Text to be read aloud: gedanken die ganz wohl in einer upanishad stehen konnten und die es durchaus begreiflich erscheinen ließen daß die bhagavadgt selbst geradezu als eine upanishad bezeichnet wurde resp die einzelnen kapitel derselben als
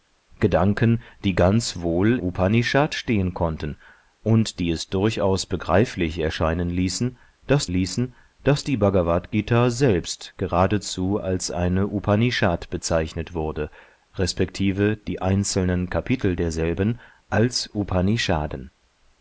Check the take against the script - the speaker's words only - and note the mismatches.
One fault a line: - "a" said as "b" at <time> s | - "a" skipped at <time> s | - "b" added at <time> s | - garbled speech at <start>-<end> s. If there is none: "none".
- "in einer" skipped at 2.2 s
- "ließen daß" added at 7.7 s